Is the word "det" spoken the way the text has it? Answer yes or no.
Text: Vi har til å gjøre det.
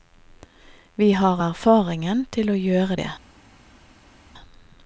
yes